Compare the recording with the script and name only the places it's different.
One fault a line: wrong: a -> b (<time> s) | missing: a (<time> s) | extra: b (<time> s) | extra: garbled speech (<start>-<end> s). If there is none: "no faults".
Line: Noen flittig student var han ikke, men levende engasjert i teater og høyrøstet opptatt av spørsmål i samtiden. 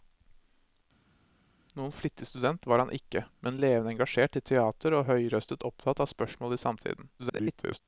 extra: garbled speech (7.2-7.8 s)